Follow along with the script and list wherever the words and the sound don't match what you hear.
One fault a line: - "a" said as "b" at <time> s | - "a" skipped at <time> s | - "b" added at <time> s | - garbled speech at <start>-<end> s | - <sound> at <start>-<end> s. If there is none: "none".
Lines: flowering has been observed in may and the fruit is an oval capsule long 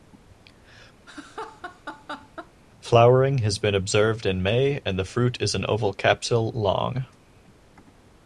- laugh at 1.1-2.5 s